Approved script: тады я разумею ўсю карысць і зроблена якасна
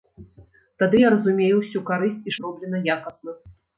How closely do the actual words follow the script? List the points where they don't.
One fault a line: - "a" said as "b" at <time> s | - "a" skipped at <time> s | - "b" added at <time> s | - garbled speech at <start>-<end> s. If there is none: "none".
none